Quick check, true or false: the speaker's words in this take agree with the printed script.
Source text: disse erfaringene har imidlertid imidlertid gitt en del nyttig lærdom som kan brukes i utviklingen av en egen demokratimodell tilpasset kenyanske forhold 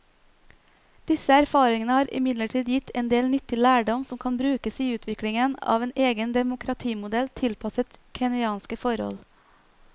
false